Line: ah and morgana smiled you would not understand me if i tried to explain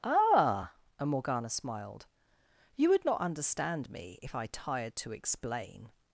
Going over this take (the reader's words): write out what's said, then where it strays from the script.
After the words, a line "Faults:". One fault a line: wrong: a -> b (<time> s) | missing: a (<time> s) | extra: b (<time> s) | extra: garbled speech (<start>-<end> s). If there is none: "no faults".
ah and morgana smiled you would not understand me if i tired to explain
Faults:
wrong: tried -> tired (4.5 s)